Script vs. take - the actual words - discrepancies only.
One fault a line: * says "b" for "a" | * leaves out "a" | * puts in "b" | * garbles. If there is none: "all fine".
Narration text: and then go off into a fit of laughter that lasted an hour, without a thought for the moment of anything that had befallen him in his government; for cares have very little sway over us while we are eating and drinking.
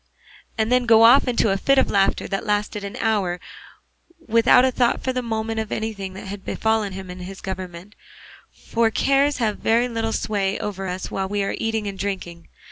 all fine